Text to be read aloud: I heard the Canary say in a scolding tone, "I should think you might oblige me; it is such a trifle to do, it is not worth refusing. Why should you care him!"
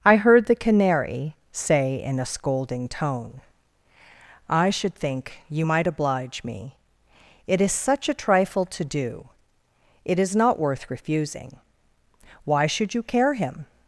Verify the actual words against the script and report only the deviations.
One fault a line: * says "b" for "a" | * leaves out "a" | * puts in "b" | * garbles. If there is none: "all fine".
all fine